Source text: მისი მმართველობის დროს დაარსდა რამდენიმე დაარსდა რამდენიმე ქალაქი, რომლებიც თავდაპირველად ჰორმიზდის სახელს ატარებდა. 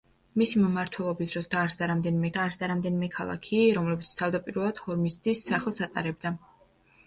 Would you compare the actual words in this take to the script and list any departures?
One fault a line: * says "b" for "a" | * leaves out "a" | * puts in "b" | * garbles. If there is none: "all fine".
all fine